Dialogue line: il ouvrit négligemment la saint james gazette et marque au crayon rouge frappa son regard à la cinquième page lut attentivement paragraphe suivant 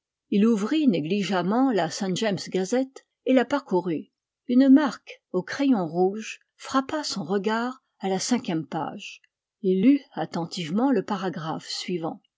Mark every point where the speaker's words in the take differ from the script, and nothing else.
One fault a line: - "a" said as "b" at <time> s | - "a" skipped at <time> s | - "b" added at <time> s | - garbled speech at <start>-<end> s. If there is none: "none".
- "la parcourut une" added at 3.3 s
- "il" added at 9.6 s
- "le" added at 10.9 s